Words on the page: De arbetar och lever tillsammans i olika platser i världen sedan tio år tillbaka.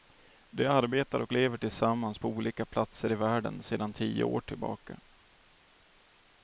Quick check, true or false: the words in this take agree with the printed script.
false